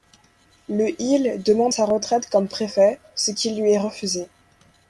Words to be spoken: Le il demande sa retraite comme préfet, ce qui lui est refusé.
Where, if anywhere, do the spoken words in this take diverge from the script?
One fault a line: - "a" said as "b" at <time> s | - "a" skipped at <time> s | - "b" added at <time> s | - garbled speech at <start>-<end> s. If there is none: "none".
none